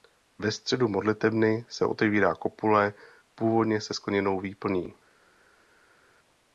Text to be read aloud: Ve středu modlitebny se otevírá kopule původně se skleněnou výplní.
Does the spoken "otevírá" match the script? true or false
true